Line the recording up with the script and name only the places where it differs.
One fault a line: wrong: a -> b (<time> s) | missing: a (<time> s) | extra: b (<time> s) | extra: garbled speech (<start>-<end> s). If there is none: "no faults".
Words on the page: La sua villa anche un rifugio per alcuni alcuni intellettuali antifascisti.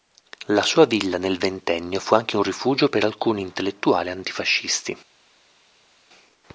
extra: nel Ventennio fu (1.2 s)
missing: alcuni (3.4 s)